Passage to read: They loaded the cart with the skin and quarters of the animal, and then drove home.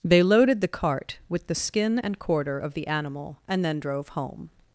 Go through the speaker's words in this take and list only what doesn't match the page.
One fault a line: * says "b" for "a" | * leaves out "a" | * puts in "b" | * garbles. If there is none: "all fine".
* says "quarter" for "quarters"